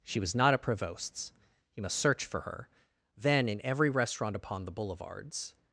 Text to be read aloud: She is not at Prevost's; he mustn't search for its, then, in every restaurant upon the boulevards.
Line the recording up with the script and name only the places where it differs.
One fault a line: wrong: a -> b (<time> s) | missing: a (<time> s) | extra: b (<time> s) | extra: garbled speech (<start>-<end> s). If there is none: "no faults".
wrong: is -> was (0.2 s)
wrong: mustn't -> must (1.8 s)
wrong: its -> her (2.4 s)